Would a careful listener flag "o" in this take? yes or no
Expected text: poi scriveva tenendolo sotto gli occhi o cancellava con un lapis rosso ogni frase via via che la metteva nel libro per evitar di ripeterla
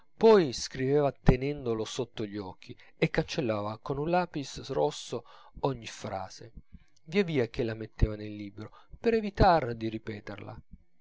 yes